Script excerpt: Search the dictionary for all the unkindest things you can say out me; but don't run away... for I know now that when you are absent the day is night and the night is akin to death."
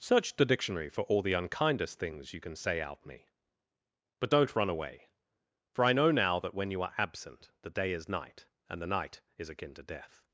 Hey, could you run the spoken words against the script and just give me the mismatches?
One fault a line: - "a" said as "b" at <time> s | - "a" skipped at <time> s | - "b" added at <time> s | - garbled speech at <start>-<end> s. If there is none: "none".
none